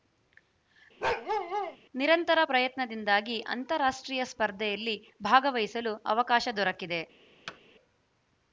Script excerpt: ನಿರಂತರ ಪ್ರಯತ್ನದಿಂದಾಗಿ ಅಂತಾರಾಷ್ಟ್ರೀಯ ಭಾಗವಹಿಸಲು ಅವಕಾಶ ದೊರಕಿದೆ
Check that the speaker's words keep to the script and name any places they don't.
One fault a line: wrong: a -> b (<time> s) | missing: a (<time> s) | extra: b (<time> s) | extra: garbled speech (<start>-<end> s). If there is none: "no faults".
extra: ಸ್ಪರ್ಧೆಯಲ್ಲಿ (4.3 s)